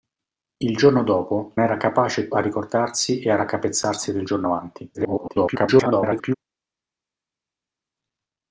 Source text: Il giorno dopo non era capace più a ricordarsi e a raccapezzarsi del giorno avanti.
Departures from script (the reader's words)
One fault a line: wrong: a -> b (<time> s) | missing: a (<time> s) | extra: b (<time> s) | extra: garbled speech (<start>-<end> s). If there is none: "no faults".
missing: non (1.6 s)
missing: più (2.3 s)
extra: garbled speech (4.9-6.4 s)